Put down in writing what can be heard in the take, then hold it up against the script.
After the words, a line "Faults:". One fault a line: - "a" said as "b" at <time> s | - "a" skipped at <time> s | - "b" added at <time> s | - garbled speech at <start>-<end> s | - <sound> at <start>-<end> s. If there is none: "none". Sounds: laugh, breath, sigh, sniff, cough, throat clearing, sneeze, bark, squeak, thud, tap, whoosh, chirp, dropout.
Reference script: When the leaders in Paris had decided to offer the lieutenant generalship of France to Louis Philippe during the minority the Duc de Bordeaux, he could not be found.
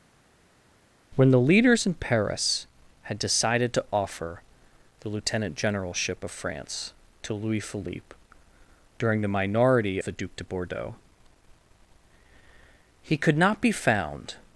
When the leaders in Paris had decided to offer the lieutenant generalship of France to Louis Philippe during the minority the Duc de Bordeaux, he could not be found.
Faults:
none